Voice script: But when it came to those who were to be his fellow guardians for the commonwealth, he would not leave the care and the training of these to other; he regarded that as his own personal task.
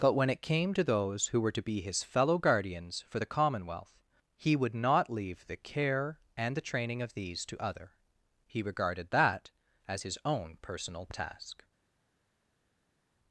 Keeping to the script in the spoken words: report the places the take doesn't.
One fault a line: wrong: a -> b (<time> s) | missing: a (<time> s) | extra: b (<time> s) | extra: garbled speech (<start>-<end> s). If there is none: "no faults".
no faults